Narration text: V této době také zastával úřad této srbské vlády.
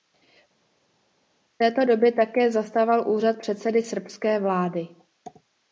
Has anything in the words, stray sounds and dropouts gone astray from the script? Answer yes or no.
yes